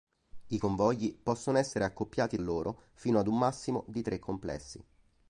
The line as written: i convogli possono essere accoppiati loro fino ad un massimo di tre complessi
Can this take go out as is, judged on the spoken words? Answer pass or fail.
pass